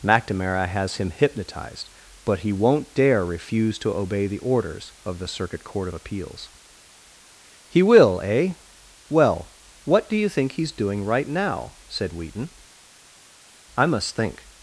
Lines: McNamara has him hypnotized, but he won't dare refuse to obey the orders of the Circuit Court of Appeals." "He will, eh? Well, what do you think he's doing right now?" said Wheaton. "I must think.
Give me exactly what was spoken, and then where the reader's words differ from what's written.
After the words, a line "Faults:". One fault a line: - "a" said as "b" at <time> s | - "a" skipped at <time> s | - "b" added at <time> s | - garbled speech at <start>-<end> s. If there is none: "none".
McNamara has him hypnotized, but he won't dare refuse to obey the orders of the Circuit Court of Appeals." "He will, eh? Well, what do you think he's doing right now?" said Wheaton. "I must think.
Faults:
none